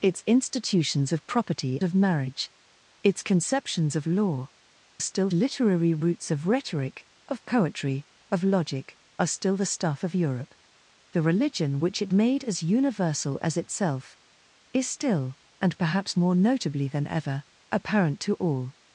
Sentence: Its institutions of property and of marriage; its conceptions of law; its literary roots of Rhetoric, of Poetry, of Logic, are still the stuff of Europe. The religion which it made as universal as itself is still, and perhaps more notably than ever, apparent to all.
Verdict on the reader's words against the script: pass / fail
fail